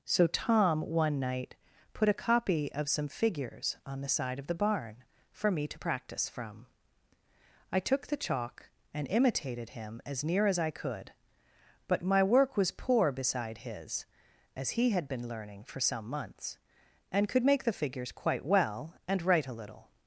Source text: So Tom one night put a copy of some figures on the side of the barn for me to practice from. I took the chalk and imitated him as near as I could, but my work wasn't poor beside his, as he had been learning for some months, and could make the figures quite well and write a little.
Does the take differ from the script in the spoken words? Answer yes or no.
yes